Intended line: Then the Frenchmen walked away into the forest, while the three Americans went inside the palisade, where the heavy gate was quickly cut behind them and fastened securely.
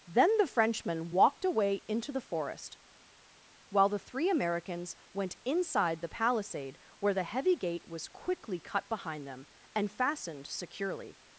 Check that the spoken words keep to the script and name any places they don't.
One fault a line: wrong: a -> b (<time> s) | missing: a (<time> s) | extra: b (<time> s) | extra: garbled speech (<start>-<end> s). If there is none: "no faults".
no faults